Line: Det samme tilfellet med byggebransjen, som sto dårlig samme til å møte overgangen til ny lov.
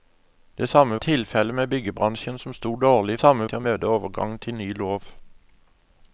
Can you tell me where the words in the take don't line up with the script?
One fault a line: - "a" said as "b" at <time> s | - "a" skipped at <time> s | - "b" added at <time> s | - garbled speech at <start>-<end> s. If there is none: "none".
none